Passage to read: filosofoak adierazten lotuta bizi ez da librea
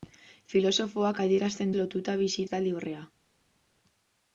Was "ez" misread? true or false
false